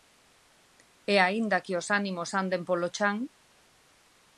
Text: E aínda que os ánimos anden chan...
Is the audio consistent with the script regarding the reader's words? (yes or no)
no